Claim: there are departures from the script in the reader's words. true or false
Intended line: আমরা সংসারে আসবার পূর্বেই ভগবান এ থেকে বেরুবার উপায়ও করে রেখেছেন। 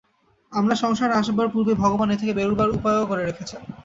false